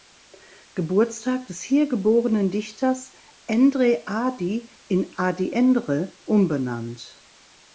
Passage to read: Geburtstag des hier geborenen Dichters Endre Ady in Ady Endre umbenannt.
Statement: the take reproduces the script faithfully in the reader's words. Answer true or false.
true